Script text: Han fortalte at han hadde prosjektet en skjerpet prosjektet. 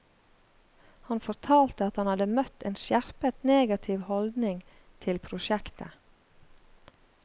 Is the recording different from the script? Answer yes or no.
yes